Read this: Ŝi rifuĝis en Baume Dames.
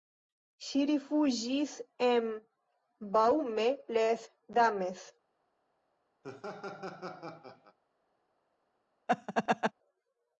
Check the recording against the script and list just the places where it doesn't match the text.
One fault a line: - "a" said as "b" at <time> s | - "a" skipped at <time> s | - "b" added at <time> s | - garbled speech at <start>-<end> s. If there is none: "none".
- "les" added at 4.0 s